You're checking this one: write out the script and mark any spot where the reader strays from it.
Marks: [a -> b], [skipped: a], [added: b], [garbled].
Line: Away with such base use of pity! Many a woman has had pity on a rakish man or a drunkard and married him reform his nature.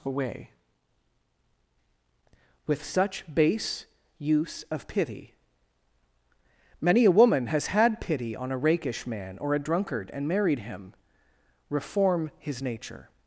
Away with such base use of pity! Many a woman has had pity on a rakish man or a drunkard and married him reform his nature.